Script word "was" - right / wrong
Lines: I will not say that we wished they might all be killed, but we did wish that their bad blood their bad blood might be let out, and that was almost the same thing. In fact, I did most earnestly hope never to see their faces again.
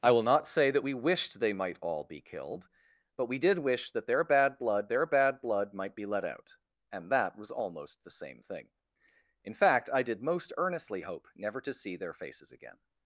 right